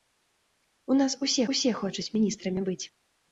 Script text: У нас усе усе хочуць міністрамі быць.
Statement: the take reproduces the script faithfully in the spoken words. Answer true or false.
true